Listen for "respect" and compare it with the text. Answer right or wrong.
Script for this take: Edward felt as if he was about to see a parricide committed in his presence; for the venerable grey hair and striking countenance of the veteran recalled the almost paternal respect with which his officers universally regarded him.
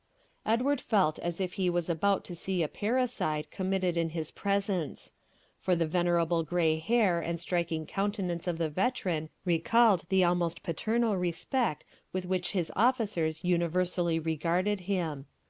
right